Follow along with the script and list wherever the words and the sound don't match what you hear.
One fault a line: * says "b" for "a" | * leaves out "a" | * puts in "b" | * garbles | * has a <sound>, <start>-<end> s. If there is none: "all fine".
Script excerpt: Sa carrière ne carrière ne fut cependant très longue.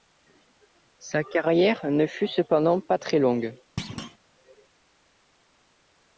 * leaves out "carrière ne"
* puts in "pas"
* has a thud, 3.8-4.2 s